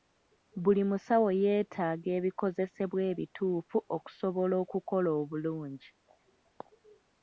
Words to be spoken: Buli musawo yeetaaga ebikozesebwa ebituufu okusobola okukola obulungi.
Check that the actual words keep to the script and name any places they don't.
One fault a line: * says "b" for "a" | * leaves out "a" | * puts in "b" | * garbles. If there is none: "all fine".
all fine